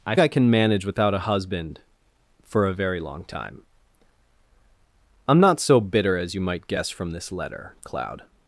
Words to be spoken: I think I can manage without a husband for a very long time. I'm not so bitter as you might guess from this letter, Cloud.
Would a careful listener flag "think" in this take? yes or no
yes